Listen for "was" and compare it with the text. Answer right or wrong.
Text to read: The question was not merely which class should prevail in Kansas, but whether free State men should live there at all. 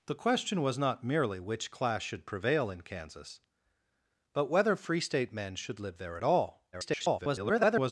right